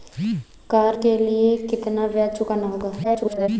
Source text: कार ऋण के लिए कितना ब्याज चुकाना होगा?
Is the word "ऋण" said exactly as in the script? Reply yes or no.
no